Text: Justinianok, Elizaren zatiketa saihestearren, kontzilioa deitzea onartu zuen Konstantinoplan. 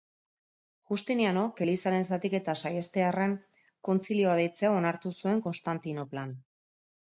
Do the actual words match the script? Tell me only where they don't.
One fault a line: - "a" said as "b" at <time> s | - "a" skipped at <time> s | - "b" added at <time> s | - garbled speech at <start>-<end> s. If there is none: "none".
none